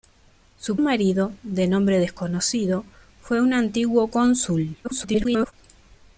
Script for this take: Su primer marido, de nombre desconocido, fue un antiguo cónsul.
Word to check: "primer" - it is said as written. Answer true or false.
false